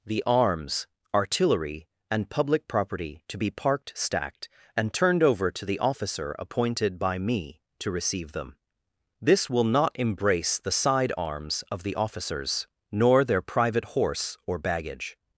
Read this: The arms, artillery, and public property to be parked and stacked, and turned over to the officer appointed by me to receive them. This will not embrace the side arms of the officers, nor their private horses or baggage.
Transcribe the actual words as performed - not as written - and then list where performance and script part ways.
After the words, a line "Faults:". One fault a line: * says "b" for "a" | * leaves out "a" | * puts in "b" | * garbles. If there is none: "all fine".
The arms, artillery, and public property to be parked stacked, and turned over to the officer appointed by me to receive them. This will not embrace the side arms of the officers, nor their private horse or baggage.
Faults:
* leaves out "and"
* says "horse" for "horses"